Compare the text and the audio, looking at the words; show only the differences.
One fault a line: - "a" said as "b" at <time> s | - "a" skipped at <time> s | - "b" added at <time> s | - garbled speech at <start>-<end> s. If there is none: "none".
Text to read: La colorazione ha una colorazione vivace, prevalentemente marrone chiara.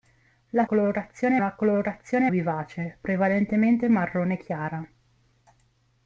none